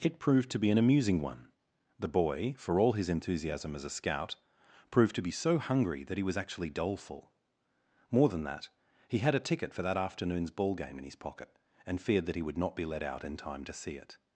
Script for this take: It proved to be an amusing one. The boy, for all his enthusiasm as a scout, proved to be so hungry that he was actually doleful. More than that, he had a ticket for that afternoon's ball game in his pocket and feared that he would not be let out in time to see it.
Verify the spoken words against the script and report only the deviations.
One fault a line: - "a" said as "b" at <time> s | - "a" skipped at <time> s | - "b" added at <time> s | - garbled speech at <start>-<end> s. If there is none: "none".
none